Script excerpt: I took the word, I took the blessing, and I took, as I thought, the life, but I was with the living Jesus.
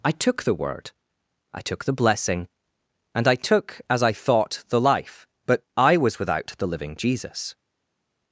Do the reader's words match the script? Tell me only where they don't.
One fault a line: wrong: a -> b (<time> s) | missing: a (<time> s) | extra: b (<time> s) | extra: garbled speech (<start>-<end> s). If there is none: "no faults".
wrong: with -> without (6.2 s)